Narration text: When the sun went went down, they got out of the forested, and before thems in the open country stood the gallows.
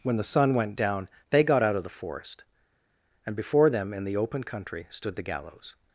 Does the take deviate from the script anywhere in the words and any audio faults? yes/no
yes